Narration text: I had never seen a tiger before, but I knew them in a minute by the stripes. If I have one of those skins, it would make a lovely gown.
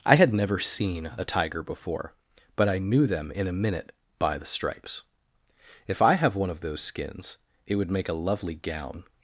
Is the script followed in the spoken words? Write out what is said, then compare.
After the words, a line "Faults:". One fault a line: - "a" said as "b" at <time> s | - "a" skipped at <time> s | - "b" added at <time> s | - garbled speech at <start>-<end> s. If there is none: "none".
I had never seen a tiger before, but I knew them in a minute by the stripes. If I have one of those skins, it would make a lovely gown.
Faults:
none